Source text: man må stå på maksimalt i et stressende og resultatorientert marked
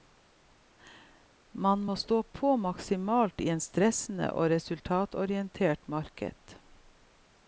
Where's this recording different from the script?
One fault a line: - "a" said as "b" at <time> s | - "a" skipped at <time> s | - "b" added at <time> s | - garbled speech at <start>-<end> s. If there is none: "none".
none